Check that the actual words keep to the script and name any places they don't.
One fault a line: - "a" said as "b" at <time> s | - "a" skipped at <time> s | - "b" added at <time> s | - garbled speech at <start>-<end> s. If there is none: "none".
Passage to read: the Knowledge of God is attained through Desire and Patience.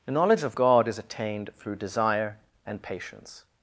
none